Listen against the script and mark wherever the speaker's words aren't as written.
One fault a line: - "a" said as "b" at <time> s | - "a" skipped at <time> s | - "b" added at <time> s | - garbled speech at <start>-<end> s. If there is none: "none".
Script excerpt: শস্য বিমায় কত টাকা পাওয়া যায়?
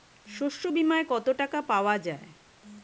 none